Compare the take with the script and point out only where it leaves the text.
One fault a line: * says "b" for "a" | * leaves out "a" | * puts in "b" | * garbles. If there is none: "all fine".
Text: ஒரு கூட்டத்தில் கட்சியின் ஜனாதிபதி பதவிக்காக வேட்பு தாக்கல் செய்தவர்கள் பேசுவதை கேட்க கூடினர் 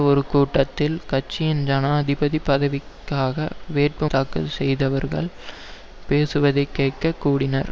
all fine